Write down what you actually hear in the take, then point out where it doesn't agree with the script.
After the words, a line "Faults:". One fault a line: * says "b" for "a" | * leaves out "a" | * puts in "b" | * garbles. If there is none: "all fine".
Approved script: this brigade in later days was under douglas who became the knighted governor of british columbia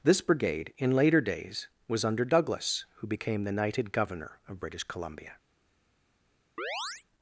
this brigade in later days was under douglas who became the knighted governor of british columbia
Faults:
all fine